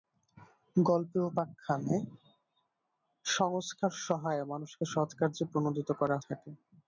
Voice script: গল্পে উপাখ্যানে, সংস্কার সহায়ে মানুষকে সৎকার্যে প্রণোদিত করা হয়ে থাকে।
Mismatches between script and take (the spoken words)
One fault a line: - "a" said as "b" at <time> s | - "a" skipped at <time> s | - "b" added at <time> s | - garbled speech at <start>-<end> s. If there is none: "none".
- "হয়ে" skipped at 6.2 s